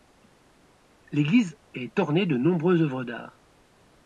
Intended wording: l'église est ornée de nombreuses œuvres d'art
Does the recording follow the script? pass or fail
pass